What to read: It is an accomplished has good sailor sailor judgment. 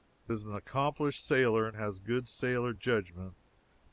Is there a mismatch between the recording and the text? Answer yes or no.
yes